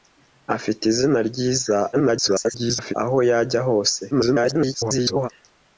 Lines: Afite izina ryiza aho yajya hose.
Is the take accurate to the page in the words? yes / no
no